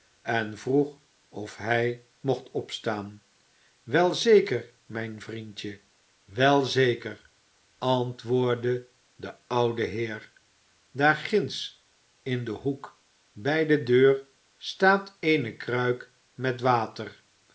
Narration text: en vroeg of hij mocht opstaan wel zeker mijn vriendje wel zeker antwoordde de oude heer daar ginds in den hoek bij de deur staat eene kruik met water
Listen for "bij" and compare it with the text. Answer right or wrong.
right